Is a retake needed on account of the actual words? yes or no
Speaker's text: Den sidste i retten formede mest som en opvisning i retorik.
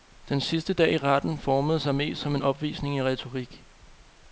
yes